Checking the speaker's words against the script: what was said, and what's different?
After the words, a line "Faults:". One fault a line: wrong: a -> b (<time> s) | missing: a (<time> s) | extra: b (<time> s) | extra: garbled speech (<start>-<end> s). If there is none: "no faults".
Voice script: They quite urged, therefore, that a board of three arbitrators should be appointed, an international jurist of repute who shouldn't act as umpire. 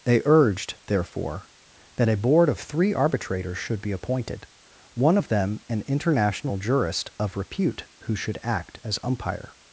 They urged, therefore, that a board of three arbitrators should be appointed, one of them an international jurist of repute who should act as umpire.
Faults:
missing: quite (0.2 s)
extra: one of them (5.0 s)
wrong: shouldn't -> should (8.1 s)